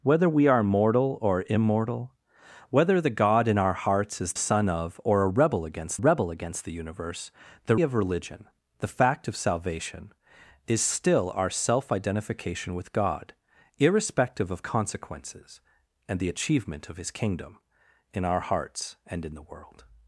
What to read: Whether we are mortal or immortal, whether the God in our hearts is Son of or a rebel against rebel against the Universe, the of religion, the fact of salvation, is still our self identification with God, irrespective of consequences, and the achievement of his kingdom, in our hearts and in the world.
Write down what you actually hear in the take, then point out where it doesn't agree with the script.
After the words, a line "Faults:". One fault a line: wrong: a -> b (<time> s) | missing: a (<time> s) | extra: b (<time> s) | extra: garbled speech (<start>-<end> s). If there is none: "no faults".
Whether we are mortal or immortal, whether the God in our hearts is Son of or a rebel against rebel against the Universe, the of religion, the fact of salvation, is still our self identification with God, irrespective of consequences, and the achievement of his kingdom, in our hearts and in the world.
Faults:
no faults